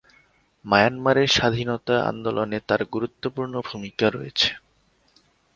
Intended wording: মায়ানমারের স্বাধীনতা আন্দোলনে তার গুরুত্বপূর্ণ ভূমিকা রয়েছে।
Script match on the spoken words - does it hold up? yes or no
yes